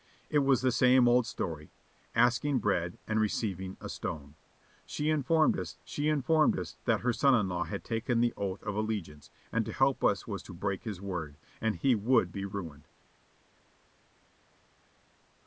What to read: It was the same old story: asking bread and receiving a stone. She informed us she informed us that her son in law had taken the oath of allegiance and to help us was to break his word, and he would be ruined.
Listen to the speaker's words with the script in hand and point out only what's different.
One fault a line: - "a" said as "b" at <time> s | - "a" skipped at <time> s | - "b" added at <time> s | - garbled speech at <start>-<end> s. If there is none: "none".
none